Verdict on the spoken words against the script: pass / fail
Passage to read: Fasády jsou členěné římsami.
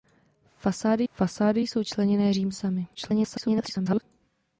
fail